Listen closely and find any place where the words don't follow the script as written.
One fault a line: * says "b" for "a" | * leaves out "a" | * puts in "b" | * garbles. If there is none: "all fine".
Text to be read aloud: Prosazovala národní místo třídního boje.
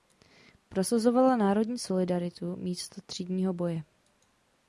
* puts in "solidaritu"